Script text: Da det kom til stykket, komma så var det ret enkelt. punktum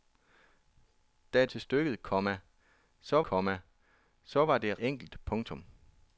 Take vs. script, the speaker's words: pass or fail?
fail